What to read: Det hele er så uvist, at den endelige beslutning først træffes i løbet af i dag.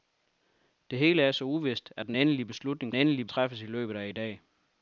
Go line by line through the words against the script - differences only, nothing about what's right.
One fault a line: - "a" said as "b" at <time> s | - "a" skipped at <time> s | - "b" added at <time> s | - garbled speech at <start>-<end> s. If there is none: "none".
- "først" said as "endelige" at 2.9 s